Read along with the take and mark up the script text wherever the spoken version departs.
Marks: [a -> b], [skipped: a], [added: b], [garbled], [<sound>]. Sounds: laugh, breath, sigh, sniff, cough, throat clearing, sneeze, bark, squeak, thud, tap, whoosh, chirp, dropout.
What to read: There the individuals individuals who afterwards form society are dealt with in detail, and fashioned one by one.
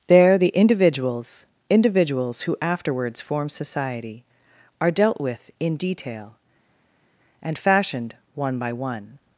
There the individuals individuals who afterwards form society are dealt with in detail, and fashioned one by one.